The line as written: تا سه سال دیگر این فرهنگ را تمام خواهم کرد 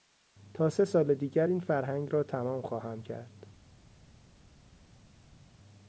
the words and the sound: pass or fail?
pass